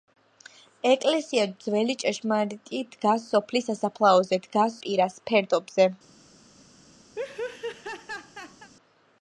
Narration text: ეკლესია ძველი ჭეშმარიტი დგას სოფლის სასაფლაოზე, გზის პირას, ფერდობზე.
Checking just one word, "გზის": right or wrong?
wrong